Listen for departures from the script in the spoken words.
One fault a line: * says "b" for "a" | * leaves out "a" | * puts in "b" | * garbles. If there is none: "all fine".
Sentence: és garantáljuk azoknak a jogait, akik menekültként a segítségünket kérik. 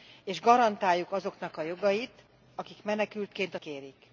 * leaves out "segítségünket"